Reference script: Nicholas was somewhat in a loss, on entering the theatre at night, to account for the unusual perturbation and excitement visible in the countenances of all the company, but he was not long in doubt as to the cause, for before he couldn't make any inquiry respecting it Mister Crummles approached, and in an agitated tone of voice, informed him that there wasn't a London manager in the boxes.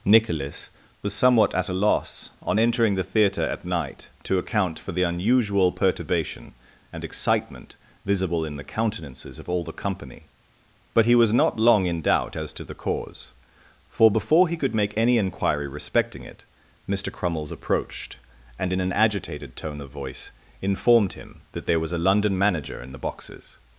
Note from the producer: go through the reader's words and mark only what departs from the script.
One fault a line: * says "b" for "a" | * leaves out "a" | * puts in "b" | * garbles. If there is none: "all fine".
* says "at" for "in"
* says "could" for "couldn't"
* says "was" for "wasn't"